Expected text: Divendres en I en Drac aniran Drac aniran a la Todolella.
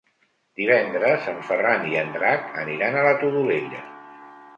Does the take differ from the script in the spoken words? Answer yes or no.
yes